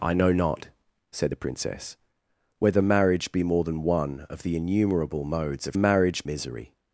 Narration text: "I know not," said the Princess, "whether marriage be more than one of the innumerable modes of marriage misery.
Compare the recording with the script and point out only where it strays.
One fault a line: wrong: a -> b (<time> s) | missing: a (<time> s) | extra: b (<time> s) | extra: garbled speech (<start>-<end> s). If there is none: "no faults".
no faults